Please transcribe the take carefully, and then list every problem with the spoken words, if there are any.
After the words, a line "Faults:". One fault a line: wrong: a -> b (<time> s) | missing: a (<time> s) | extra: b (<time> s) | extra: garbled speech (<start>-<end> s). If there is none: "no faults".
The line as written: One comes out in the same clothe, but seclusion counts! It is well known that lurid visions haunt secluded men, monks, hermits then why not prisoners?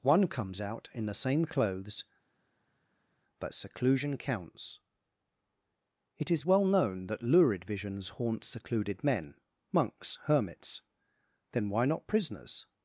One comes out in the same clothes, but seclusion counts! It is well known that lurid visions haunt secluded men, monks, hermits then why not prisoners?
Faults:
wrong: clothe -> clothes (1.4 s)